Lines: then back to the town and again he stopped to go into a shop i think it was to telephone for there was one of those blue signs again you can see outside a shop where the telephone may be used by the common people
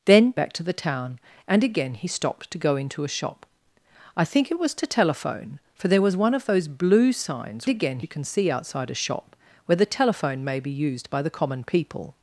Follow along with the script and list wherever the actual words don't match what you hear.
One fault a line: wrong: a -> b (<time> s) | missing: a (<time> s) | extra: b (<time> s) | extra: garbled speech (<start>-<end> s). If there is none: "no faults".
no faults